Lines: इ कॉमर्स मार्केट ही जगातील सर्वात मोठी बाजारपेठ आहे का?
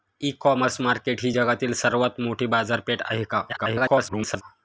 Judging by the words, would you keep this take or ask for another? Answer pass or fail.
fail